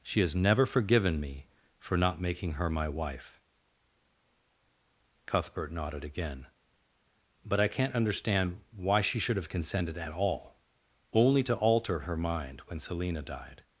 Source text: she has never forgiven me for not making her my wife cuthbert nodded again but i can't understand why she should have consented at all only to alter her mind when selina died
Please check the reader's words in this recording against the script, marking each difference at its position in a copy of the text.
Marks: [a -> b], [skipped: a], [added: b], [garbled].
she has never forgiven me for not making her my wife cuthbert nodded again but i can't understand why she should have consented at all only to alter her mind when selina died